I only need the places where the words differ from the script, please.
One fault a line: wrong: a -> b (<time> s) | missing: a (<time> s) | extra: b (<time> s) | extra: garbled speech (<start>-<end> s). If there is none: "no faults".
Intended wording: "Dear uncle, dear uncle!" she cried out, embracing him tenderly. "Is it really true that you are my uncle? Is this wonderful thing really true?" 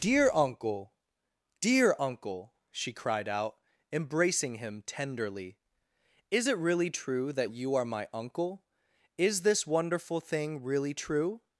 no faults